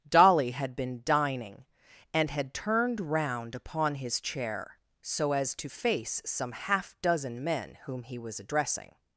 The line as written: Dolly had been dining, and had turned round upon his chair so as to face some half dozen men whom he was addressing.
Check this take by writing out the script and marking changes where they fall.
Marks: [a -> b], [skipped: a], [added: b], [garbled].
Dolly had been dining, and had turned round upon his chair so as to face some half dozen men whom he was addressing.